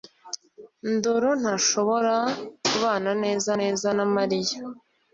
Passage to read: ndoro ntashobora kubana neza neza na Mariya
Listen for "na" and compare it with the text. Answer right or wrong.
right